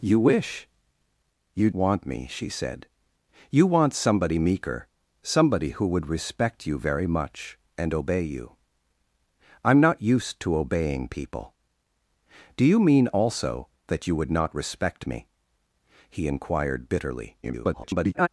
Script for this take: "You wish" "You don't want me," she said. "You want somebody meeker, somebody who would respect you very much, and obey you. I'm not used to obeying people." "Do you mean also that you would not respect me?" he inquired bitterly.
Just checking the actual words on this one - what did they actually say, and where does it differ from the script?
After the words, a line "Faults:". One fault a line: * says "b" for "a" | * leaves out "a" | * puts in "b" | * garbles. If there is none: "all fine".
"You wish" "You want me," she said. "You want somebody meeker, somebody who would respect you very much, and obey you. I'm not used to obeying people." "Do you mean also that you would not respect me?" he inquired bitterly. [garbled]
Faults:
* leaves out "don't"
* garbles